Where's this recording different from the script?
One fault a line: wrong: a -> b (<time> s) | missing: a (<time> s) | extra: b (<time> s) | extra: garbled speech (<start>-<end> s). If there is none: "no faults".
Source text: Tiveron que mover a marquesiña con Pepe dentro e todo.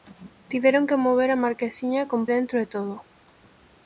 missing: Pepe (2.2 s)